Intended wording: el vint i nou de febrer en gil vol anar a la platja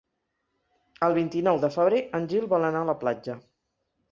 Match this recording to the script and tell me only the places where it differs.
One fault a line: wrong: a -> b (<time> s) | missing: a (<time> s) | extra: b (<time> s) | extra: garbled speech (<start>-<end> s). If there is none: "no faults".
no faults